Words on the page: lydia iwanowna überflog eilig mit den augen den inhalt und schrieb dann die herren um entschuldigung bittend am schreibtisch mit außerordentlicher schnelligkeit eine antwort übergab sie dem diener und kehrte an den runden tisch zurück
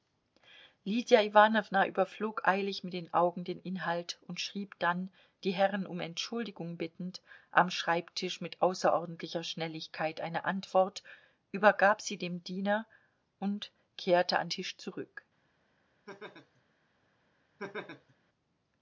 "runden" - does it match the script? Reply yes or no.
no